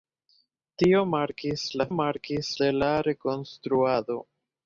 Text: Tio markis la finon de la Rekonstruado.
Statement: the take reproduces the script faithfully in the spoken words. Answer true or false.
false